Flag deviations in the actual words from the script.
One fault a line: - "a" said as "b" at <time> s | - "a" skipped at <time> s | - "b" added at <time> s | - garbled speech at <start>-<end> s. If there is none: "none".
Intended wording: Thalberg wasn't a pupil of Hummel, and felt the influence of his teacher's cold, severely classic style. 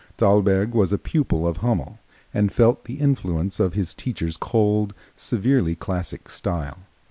- "wasn't" said as "was" at 0.7 s